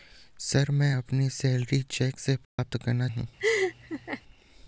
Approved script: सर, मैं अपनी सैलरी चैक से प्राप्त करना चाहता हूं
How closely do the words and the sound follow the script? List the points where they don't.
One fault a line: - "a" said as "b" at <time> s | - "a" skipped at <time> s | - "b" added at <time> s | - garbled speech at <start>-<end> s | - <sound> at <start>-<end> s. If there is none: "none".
- dropout at 2.4-2.6 s
- "चाहता" skipped at 3.1 s
- laugh at 3.4-4.2 s